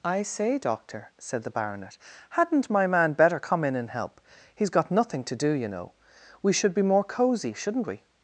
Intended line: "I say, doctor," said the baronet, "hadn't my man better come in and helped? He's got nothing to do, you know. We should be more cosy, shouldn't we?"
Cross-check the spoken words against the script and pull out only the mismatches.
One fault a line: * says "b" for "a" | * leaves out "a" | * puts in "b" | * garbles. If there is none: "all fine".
* says "help" for "helped"